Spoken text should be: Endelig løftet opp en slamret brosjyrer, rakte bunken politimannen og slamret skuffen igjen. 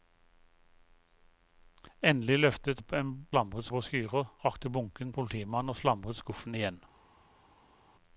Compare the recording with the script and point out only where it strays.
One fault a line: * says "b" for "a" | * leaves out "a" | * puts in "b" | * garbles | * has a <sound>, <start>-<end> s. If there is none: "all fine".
all fine